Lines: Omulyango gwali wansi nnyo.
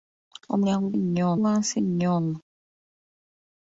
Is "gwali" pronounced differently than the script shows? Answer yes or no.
yes